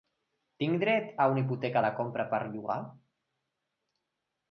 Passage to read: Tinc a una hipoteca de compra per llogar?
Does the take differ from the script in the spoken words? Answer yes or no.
yes